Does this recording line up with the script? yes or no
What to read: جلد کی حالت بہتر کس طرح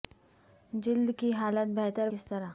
yes